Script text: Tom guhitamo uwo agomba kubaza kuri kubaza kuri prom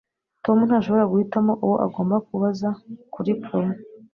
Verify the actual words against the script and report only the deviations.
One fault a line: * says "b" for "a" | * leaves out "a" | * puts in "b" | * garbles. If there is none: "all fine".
* puts in "ntashobora"
* leaves out "kubaza kuri"